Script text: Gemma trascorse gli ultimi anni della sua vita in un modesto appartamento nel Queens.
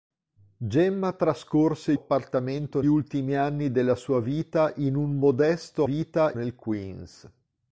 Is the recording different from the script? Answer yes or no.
yes